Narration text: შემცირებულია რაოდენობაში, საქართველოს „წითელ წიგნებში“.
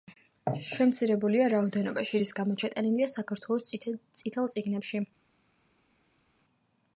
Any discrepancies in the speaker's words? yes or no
yes